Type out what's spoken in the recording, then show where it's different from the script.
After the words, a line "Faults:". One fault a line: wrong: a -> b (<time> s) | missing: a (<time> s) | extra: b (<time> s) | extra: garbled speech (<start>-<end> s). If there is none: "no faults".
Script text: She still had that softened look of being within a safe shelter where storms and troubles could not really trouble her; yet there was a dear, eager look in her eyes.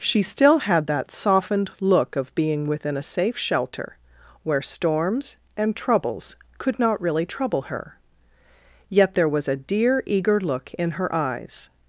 She still had that softened look of being within a safe shelter where storms and troubles could not really trouble her; yet there was a dear, eager look in her eyes.
Faults:
no faults